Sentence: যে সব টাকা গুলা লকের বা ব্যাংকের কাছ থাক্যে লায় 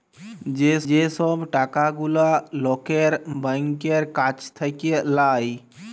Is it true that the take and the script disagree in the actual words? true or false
true